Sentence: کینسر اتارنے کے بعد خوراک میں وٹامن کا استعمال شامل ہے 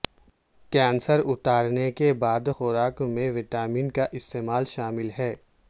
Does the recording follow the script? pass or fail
pass